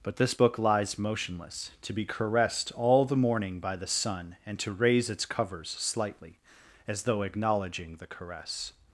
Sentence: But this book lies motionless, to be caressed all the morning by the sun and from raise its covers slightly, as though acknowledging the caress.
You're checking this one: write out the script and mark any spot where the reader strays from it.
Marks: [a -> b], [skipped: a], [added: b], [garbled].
But this book lies motionless, to be caressed all the morning by the sun and [from -> to] raise its covers slightly, as though acknowledging the caress.